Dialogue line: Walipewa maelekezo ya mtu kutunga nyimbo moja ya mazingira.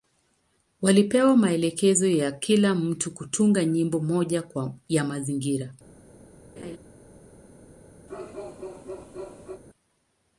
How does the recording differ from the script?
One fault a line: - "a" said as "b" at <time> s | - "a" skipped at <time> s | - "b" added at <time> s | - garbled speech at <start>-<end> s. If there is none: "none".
- "kila" added at 2.3 s